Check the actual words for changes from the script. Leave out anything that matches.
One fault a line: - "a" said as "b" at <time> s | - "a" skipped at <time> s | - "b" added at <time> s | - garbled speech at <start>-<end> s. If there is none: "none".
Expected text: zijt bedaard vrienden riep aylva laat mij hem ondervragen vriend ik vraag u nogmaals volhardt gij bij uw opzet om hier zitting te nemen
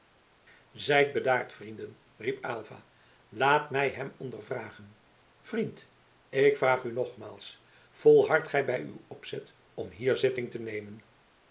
none